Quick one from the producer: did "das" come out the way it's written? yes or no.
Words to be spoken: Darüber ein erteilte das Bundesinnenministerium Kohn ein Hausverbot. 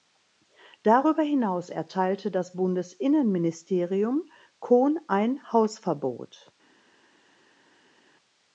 yes